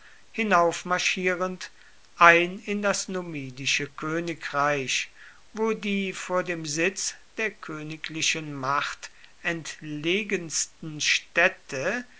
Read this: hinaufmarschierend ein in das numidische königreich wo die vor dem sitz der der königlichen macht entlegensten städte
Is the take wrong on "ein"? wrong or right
right